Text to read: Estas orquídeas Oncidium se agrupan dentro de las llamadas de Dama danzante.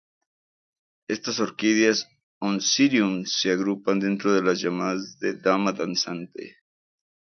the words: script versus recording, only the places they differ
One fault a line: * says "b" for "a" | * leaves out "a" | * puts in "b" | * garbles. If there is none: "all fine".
all fine